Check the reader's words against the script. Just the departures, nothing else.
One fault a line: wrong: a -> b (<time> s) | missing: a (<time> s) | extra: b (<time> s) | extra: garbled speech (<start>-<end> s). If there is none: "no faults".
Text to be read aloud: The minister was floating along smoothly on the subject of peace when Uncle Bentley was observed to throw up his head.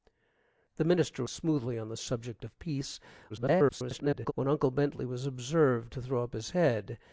missing: was floating along (1.2 s)
extra: garbled speech (3.3-4.3 s)